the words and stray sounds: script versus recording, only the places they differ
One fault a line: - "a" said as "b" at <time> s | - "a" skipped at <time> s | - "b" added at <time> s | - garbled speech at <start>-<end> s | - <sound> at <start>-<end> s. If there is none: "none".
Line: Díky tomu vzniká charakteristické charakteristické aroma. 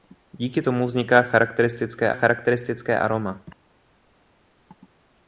none